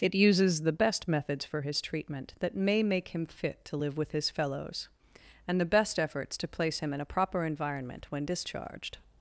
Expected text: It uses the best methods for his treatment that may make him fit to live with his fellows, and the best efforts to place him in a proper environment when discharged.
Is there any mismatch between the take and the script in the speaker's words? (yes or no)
no